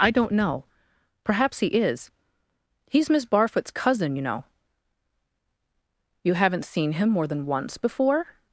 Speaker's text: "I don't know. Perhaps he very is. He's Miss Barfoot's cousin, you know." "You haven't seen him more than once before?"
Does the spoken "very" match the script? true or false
false